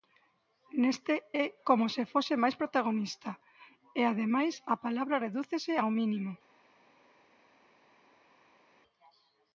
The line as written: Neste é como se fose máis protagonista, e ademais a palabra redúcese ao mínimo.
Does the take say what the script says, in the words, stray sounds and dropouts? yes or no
yes